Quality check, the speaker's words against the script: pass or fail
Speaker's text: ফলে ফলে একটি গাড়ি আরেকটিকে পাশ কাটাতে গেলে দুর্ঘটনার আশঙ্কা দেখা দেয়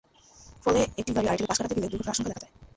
fail